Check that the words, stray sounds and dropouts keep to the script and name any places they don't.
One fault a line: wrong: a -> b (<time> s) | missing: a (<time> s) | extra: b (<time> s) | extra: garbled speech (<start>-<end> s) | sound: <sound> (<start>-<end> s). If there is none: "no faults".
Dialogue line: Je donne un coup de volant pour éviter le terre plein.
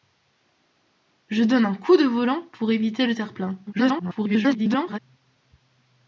extra: garbled speech (3.7-5.0 s)